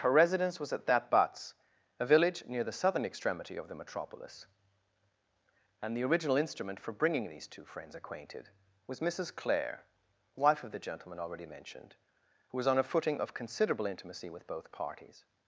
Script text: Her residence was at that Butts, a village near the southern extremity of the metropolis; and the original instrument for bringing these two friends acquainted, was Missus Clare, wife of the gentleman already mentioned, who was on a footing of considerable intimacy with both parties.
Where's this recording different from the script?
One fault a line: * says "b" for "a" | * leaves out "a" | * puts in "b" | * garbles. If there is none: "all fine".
all fine